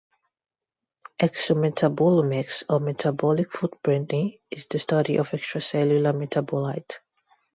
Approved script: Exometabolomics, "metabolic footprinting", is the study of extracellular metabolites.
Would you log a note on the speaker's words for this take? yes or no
yes